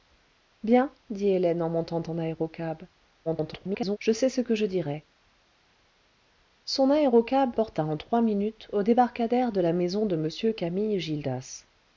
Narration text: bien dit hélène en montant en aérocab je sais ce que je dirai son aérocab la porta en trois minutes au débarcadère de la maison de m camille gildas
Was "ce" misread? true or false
false